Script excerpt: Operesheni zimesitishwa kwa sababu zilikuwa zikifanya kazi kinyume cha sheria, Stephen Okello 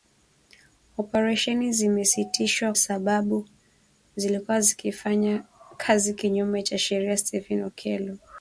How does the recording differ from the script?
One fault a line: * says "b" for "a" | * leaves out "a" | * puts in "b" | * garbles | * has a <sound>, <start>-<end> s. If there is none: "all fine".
* leaves out "kwa"